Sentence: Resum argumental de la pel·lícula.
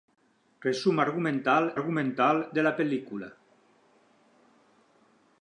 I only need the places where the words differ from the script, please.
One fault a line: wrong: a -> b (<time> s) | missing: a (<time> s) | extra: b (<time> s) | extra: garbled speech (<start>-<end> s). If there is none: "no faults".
extra: argumental (1.7 s)